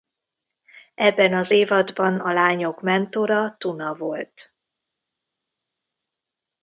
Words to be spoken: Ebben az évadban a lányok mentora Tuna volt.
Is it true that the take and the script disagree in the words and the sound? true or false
false